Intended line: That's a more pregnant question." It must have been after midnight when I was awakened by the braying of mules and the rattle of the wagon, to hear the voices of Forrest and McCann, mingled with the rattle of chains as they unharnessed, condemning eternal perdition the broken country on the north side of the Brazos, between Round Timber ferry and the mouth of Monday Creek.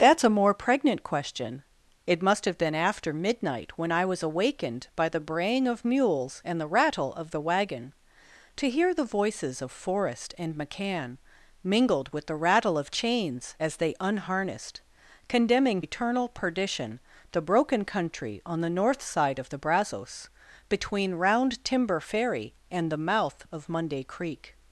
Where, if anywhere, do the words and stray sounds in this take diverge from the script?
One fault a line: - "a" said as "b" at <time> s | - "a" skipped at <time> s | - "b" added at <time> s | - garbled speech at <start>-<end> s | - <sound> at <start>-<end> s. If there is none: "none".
none